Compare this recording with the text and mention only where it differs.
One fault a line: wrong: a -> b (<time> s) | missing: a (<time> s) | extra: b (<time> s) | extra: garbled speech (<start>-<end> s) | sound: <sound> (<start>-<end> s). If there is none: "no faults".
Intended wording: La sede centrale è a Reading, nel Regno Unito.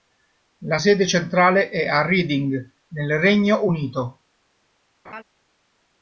sound: laugh (5.0-5.2 s)